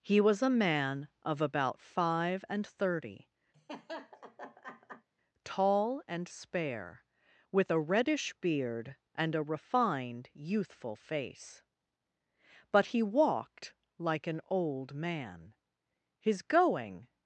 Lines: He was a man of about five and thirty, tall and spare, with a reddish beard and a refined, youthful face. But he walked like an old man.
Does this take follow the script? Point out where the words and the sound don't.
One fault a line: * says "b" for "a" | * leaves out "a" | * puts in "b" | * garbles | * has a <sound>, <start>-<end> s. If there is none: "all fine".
* has a laugh, 3.5-5.1 s
* puts in "His going"